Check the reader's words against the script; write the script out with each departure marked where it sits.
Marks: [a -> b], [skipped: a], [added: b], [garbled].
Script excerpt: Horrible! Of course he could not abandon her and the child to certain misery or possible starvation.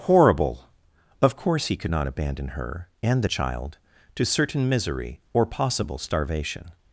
Horrible! Of course he could not abandon her and the child to certain misery or possible starvation.